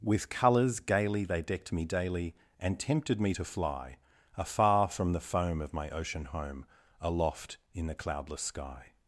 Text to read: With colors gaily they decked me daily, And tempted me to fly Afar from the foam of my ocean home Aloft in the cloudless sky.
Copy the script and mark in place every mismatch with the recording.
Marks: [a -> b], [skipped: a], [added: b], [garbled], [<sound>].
With colors gaily they decked me daily, And tempted me to fly Afar from the foam of my ocean home Aloft in the cloudless sky.